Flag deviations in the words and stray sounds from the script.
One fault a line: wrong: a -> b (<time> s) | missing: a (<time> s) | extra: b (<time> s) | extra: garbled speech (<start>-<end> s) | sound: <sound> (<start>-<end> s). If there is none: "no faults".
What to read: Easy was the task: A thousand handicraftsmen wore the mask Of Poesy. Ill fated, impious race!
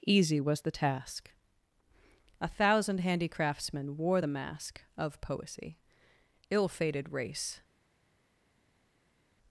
missing: impious (7.1 s)